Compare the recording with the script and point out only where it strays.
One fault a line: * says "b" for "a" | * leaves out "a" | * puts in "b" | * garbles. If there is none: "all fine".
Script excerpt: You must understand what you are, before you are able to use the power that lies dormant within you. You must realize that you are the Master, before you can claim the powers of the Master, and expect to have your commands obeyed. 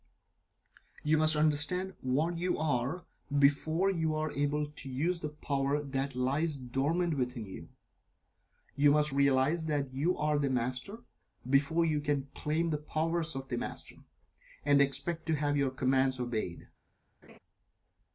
all fine